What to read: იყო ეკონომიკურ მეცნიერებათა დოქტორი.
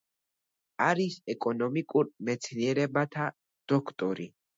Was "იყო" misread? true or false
true